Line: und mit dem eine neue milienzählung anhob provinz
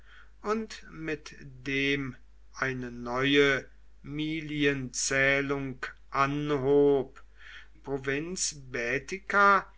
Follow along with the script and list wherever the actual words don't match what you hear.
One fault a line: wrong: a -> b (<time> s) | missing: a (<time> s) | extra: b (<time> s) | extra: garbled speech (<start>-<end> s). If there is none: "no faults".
no faults